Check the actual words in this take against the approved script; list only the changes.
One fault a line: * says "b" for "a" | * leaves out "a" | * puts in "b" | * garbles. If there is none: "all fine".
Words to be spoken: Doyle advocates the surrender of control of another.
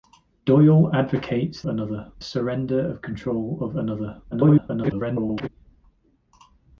* says "another" for "the"
* garbles